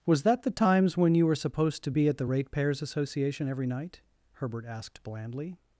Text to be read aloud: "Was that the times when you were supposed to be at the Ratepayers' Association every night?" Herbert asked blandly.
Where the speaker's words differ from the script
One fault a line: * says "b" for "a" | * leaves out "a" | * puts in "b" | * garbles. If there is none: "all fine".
all fine